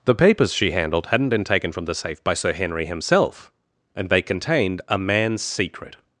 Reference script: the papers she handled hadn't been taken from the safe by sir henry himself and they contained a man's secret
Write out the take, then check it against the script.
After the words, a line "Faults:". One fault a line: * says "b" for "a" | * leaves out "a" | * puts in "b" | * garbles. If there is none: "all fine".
the papers she handled hadn't been taken from the safe by sir henry himself and they contained a man's secret
Faults:
all fine